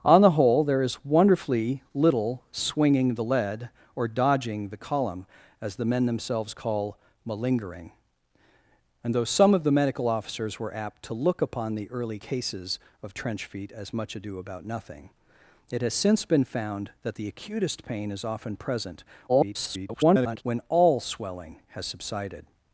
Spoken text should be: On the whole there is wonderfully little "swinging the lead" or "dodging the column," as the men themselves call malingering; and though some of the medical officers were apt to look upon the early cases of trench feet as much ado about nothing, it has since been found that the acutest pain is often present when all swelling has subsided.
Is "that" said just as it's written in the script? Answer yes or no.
yes